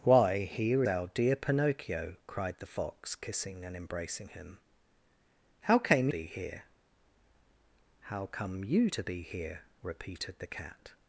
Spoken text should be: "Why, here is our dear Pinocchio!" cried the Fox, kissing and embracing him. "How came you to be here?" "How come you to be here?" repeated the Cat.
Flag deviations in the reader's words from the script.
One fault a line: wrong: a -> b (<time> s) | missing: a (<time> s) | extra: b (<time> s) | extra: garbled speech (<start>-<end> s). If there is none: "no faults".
missing: is (0.8 s)
missing: you to (6.1 s)